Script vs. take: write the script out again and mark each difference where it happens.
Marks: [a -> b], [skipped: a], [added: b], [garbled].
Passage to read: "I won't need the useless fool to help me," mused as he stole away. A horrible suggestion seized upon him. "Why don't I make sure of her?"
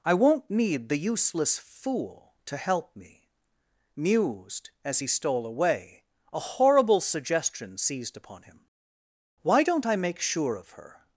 "I won't need the useless fool to help me," mused as he stole away. A horrible suggestion seized upon him. "Why don't I make sure of her?"